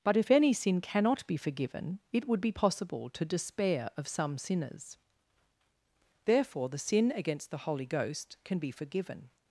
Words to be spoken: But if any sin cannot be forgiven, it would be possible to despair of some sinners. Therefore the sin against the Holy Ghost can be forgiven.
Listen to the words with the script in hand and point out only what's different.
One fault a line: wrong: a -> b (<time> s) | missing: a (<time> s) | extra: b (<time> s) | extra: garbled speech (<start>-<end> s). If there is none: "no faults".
no faults